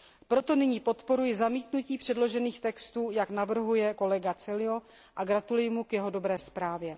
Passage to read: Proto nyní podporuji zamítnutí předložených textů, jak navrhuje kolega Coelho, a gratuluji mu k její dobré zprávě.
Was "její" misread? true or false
true